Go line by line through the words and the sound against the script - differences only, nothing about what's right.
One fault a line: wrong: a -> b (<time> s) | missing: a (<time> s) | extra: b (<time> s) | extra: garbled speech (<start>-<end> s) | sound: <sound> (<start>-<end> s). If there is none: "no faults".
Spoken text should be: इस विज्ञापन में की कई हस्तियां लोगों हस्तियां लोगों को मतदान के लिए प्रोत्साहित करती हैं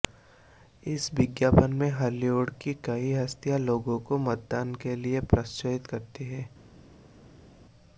extra: हॉलीवुड (1.9 s)
missing: हस्तियां लोगों (4.0 s)